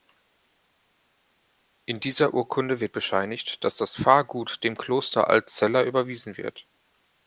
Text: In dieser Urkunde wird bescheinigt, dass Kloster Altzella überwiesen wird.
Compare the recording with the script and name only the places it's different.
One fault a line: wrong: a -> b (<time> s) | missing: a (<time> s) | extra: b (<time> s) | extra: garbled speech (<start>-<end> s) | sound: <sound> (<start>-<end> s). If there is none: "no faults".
extra: das Pfarrgut dem (3.8 s)